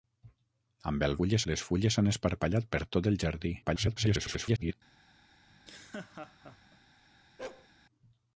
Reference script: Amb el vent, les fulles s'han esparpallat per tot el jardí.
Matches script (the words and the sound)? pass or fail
fail